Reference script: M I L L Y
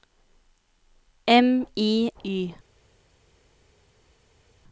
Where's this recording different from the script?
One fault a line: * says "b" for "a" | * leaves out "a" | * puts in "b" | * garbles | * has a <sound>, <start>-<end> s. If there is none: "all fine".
* leaves out "L L"